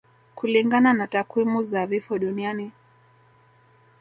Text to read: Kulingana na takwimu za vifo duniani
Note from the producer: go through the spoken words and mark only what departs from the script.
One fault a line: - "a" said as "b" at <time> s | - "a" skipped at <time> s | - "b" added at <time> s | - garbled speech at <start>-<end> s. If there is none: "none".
none